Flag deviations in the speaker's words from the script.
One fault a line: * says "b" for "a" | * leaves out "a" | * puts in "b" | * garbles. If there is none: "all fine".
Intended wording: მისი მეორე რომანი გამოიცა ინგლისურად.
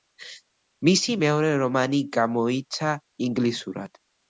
all fine